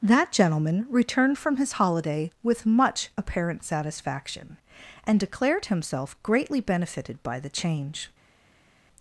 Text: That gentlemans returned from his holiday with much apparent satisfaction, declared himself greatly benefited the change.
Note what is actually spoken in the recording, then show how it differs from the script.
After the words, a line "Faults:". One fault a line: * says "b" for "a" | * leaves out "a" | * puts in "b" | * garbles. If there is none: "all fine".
That gentleman returned from his holiday with much apparent satisfaction, and declared himself greatly benefited by the change.
Faults:
* says "gentleman" for "gentlemans"
* puts in "and"
* puts in "by"